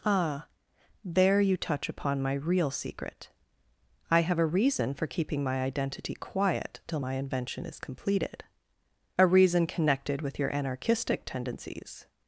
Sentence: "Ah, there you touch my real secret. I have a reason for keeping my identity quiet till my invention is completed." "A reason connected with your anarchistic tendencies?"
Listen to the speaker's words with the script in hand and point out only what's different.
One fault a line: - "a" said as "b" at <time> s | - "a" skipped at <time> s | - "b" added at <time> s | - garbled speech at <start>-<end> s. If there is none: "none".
- "upon" added at 1.9 s